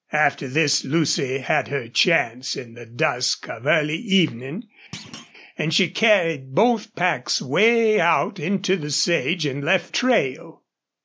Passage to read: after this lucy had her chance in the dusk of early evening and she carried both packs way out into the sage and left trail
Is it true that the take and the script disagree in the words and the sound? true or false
true